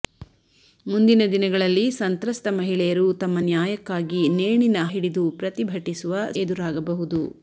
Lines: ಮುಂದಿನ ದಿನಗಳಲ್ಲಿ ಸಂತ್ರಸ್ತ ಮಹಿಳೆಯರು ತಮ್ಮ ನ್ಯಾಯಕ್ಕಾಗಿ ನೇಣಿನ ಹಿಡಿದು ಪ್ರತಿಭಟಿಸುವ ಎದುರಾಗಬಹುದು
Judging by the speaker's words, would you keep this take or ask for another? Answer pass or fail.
pass